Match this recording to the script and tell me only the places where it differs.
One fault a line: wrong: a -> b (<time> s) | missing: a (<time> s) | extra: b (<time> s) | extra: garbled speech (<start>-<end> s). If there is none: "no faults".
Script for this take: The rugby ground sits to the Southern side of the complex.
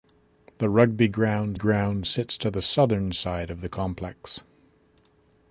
extra: ground (1.5 s)